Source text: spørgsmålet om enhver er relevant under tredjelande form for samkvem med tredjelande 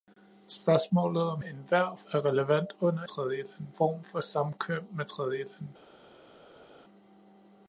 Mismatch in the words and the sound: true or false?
false